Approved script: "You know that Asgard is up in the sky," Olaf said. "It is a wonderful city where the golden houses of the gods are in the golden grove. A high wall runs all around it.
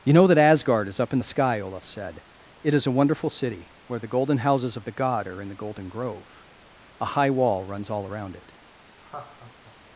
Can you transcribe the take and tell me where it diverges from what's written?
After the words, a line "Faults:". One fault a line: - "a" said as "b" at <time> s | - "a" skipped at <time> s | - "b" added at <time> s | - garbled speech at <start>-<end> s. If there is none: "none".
"You know that Asgard is up in the sky," Olaf said. "It is a wonderful city where the golden houses of the god are in the golden grove. A high wall runs all around it.
Faults:
- "gods" said as "god" at 4.9 s